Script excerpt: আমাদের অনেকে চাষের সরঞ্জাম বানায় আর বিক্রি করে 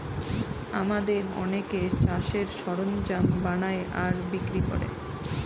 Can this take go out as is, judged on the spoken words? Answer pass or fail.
pass